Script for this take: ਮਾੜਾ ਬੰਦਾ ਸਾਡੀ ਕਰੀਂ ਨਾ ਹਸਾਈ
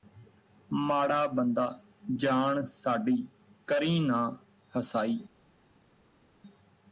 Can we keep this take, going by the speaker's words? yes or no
no